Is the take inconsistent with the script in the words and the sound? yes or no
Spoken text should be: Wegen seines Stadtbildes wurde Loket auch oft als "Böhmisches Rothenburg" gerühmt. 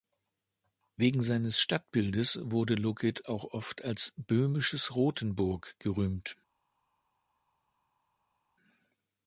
no